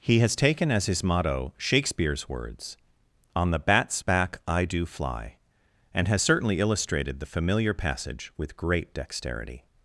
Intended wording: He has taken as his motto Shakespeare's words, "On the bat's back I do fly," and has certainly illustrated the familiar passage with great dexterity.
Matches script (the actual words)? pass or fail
pass